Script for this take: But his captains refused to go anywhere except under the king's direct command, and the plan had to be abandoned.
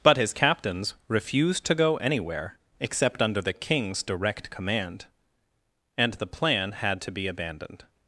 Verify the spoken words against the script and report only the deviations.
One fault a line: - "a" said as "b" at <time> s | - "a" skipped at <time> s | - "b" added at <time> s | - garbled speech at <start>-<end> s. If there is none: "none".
none